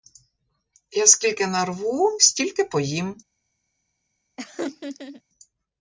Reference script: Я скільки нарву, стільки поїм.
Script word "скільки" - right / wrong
right